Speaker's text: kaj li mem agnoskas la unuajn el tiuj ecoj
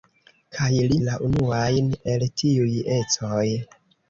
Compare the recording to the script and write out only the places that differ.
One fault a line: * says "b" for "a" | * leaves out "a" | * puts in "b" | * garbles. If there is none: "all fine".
* leaves out "mem agnoskas"